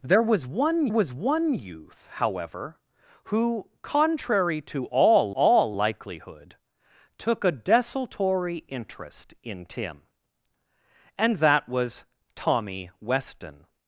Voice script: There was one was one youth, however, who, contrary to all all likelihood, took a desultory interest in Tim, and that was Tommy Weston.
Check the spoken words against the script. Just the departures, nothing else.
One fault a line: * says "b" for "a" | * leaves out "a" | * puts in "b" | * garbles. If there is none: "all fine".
all fine